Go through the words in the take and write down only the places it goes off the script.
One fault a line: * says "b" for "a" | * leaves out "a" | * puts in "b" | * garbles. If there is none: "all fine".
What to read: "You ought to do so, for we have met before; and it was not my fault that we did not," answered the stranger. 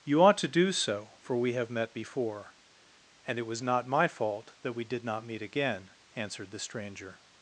* puts in "meet again"